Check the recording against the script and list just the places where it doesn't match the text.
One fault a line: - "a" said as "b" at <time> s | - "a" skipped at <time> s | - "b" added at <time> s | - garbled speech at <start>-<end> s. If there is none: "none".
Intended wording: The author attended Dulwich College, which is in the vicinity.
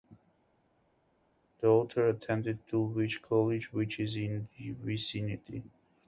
none